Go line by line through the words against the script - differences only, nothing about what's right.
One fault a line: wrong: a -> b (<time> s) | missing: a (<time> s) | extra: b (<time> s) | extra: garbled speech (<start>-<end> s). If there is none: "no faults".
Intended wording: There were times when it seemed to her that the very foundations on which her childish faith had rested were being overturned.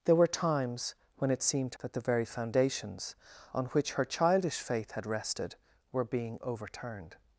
missing: her (1.8 s)